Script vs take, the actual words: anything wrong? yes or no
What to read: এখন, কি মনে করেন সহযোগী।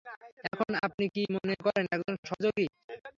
yes